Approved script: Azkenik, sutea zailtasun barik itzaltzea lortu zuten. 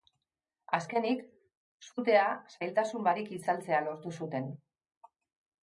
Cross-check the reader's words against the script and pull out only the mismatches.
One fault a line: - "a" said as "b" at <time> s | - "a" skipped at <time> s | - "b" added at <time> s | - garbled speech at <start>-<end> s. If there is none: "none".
none